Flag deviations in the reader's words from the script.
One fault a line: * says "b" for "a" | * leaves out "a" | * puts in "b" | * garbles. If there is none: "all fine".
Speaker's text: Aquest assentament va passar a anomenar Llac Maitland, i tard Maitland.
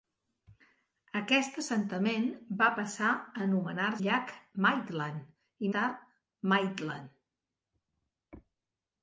all fine